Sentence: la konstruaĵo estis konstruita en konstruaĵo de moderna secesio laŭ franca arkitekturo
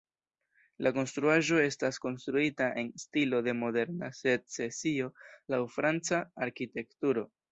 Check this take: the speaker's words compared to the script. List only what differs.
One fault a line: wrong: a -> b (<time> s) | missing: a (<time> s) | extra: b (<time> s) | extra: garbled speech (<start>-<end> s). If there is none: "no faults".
wrong: estis -> estas (1.6 s)
wrong: konstruaĵo -> stilo (3.1 s)